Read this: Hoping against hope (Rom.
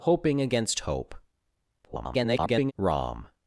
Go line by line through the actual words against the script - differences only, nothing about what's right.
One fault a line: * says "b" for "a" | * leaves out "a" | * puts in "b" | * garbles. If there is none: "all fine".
* garbles